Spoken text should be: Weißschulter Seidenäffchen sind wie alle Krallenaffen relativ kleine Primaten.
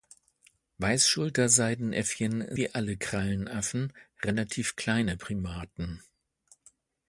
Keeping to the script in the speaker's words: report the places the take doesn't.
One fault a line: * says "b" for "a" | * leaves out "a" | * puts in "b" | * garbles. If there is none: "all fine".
* leaves out "sind"